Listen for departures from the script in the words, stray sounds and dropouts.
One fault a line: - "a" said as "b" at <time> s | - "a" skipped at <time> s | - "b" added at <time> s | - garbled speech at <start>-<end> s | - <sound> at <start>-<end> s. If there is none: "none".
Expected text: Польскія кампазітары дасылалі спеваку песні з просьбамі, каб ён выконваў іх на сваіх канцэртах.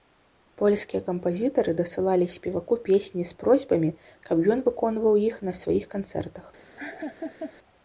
- laugh at 6.8-7.5 s